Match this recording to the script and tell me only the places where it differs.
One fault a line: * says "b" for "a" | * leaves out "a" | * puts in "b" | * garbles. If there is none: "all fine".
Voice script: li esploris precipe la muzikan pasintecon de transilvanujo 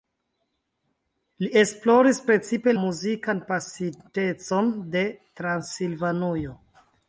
* leaves out "la"